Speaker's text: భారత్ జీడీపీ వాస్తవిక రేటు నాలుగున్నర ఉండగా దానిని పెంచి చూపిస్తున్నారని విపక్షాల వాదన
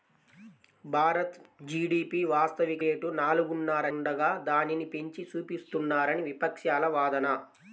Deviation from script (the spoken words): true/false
false